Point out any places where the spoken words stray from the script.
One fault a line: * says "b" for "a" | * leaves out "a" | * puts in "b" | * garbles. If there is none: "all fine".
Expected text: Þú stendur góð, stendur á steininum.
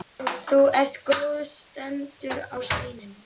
* says "ert" for "stendur"